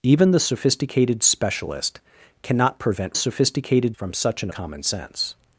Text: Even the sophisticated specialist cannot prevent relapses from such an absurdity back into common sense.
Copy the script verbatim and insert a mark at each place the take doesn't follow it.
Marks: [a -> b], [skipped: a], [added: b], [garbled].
Even the sophisticated specialist cannot prevent [relapses -> sophisticated] from such an [skipped: absurdity back into] common sense.